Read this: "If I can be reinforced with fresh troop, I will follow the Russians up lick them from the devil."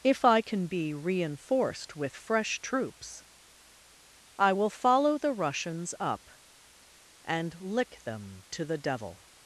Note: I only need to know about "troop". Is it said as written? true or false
false